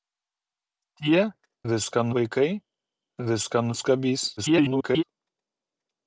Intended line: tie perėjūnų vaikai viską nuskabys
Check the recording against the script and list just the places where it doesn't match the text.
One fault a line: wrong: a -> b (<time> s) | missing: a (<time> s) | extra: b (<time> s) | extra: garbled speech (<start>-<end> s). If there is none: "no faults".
wrong: perėjūnų -> viską (1.7 s)
extra: garbled speech (4.4-5.0 s)